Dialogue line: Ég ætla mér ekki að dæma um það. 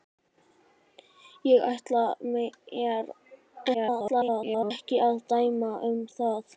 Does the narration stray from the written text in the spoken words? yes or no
yes